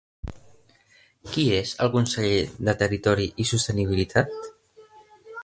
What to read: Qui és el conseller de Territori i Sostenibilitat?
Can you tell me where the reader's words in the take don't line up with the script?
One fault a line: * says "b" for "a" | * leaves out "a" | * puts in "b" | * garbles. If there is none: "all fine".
all fine